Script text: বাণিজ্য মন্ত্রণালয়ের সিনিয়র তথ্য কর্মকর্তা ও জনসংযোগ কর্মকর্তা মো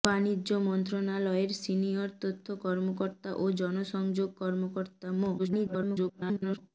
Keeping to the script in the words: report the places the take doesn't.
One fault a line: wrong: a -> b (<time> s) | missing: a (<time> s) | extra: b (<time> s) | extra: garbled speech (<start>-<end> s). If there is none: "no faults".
extra: garbled speech (5.4-6.6 s)